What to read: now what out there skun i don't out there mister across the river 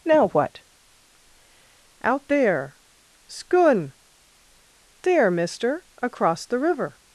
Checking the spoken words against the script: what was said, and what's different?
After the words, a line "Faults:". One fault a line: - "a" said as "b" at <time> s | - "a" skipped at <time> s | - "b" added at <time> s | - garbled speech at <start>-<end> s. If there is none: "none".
now what out there skun there mister across the river
Faults:
- "i don't out" skipped at 3.9 s